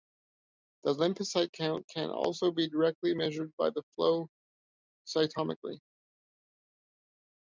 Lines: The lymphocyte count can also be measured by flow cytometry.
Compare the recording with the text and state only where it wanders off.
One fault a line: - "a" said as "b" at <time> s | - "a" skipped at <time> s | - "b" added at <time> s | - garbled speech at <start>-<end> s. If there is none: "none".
- "directly" added at 2.7 s